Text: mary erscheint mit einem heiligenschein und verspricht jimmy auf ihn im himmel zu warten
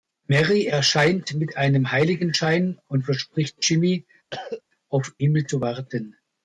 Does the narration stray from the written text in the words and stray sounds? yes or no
yes